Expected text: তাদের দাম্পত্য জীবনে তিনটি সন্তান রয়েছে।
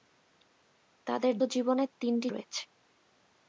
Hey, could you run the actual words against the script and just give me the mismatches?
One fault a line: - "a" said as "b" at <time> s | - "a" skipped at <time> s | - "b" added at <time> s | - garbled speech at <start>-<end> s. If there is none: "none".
- "দাম্পত্য" skipped at 1.3 s
- "সন্তান" skipped at 2.3 s